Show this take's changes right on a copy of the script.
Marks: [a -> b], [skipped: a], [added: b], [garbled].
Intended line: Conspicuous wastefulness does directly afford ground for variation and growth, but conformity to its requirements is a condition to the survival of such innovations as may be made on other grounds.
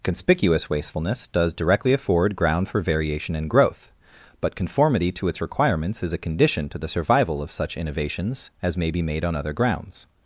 Conspicuous wastefulness does directly afford ground for variation and growth, but conformity to its requirements is a condition to the survival of such innovations as may be made on other grounds.